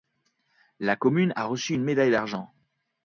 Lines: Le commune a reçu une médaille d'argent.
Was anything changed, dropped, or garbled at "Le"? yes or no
yes